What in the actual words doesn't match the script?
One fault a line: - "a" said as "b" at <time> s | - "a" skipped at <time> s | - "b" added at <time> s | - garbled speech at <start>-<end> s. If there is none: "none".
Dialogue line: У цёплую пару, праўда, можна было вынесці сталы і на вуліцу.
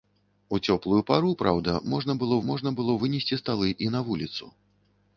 - "можна было" added at 2.5 s